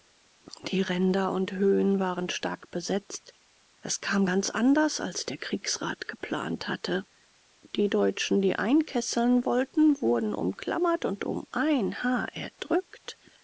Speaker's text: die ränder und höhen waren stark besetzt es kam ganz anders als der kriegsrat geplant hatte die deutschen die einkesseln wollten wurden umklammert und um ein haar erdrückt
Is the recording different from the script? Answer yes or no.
no